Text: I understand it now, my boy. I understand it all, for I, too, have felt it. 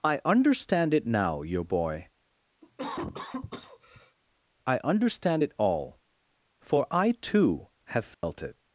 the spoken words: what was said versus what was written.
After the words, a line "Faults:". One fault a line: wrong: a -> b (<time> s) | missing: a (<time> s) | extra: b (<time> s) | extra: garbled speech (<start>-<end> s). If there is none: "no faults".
I understand it now, your boy. I understand it all, for I, too, have felt it.
Faults:
wrong: my -> your (1.4 s)